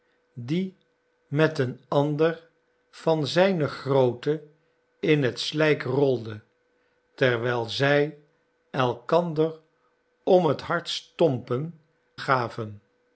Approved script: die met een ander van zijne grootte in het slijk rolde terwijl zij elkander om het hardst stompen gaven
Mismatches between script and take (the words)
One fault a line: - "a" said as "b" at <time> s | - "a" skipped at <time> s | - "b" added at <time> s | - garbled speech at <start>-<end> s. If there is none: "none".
none